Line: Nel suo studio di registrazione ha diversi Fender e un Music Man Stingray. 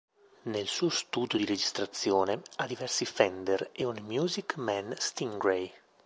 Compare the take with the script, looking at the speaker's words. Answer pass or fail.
pass